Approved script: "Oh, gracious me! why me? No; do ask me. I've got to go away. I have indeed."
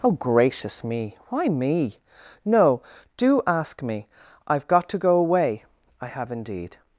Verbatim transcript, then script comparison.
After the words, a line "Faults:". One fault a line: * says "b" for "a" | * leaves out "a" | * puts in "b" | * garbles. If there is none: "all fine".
"Oh, gracious me! why me? No; do ask me. I've got to go away. I have indeed."
Faults:
all fine